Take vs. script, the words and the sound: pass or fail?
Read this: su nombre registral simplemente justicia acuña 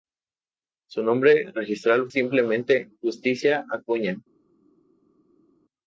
pass